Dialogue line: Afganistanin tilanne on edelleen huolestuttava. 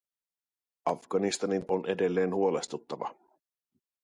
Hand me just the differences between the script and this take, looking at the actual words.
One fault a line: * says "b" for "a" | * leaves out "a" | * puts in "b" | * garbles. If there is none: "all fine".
* leaves out "tilanne"